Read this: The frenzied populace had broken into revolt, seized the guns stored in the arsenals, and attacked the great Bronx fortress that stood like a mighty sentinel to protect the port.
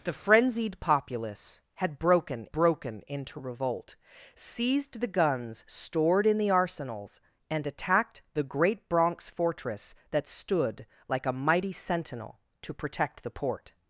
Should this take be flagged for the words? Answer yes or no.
yes